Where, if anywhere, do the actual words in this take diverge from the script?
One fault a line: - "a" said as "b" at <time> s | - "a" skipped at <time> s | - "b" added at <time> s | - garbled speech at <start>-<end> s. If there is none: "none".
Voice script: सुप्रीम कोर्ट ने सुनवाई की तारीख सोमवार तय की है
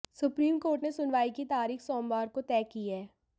- "को" added at 2.3 s